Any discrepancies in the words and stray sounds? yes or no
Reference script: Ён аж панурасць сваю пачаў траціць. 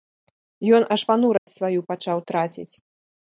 yes